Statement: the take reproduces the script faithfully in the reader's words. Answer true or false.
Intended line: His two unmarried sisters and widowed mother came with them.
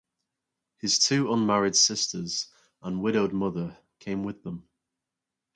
true